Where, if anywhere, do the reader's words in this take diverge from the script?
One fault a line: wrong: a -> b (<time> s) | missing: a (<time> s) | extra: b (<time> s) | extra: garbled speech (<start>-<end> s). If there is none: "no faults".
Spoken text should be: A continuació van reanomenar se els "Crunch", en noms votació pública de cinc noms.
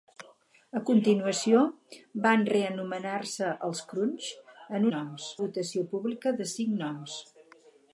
no faults